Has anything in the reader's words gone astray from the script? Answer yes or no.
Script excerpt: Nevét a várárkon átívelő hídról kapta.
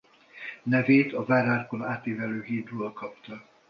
no